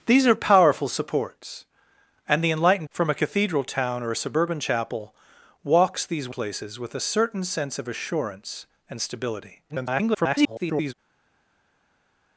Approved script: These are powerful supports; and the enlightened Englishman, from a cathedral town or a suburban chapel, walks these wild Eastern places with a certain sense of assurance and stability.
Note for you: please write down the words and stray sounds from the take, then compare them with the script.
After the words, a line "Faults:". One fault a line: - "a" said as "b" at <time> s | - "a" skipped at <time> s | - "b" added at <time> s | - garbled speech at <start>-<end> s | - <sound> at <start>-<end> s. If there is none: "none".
These are powerful supports; and the enlightened From a cathedral town or a suburban chapel, walks these places with a certain sense of assurance and stability. [garbled]
Faults:
- "Englishman" skipped at 2.9 s
- "wild Eastern" skipped at 6.3 s
- garbled speech at 9.7-10.9 s